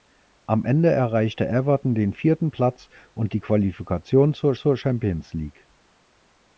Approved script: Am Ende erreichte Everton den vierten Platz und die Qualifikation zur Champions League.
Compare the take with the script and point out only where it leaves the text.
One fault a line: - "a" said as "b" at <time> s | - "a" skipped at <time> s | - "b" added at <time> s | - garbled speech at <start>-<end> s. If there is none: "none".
- "zur" added at 4.6 s